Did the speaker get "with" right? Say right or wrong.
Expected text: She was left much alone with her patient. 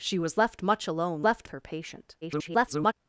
wrong